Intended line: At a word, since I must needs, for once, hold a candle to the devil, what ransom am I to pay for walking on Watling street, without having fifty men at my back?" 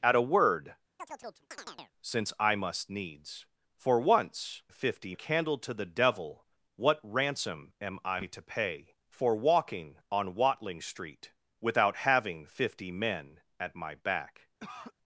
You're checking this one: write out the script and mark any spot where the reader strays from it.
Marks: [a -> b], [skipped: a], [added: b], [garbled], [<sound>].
At a word, [chirp] since I must needs, for once, [hold -> fifty] a candle to the devil, what ransom am I to pay for walking on Watling street, without having fifty men at my back?" [cough]